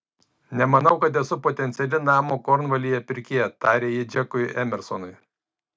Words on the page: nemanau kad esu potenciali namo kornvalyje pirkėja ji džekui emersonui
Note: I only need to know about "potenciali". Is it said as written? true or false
true